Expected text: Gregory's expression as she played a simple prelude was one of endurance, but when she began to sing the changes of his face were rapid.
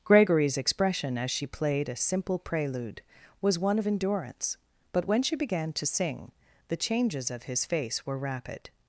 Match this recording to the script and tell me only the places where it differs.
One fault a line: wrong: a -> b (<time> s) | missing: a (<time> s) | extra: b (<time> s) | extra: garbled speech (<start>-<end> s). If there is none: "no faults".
no faults